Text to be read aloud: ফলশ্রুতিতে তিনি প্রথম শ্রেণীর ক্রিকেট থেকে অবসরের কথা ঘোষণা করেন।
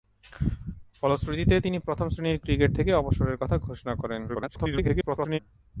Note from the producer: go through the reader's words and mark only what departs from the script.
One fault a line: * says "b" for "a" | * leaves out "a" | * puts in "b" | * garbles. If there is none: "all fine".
* garbles